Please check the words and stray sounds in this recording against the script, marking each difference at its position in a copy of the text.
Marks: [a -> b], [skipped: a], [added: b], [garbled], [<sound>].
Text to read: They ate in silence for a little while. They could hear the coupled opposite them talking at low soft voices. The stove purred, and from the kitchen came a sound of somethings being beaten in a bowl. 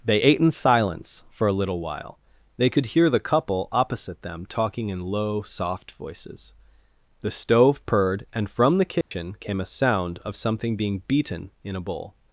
They ate in silence for a little while. They could hear the [coupled -> couple] opposite them talking [at -> in] low soft voices. The stove purred, and from the kitchen [dropout] came a sound of [somethings -> something] being beaten in a bowl.